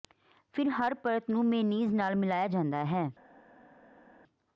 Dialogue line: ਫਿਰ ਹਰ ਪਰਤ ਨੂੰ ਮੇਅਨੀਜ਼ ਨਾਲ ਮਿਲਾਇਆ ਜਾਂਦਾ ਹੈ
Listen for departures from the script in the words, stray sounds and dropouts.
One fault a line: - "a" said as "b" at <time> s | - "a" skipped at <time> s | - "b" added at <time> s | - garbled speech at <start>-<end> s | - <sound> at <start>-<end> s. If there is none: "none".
none